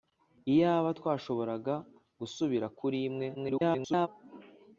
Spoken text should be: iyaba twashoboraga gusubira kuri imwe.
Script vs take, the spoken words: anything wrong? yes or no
yes